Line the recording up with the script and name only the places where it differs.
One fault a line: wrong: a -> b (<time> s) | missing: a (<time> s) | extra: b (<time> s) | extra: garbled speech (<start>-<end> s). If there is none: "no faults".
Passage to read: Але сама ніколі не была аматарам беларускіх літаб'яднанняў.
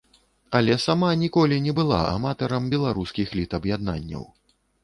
no faults